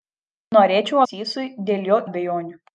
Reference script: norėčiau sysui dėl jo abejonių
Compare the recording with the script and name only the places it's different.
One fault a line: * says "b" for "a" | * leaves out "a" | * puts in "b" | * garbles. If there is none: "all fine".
all fine